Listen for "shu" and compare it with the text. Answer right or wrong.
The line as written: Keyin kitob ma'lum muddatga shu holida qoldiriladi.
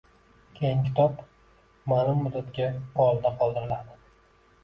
wrong